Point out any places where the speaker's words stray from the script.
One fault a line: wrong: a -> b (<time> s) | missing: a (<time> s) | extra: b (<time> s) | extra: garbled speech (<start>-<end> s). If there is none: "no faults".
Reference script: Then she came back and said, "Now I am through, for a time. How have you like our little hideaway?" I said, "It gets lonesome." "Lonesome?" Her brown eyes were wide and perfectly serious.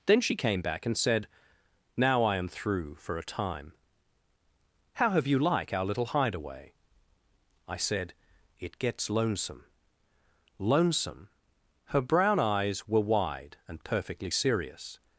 no faults